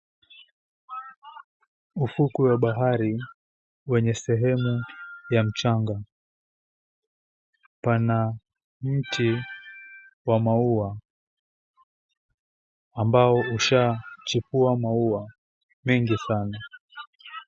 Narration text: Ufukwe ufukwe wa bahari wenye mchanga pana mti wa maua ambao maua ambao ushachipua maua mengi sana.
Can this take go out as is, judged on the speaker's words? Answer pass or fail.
fail